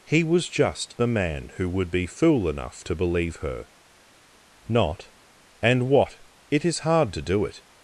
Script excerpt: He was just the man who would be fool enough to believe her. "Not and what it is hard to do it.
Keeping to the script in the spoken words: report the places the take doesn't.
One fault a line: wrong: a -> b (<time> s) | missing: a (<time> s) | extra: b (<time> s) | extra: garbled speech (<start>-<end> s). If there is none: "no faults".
no faults